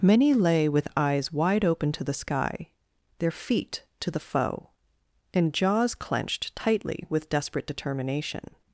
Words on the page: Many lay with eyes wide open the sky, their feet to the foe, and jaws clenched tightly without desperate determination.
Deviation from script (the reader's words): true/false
true